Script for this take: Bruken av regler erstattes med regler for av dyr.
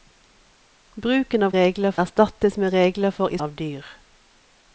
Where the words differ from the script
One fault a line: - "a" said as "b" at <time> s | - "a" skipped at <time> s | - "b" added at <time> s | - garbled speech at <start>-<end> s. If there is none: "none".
none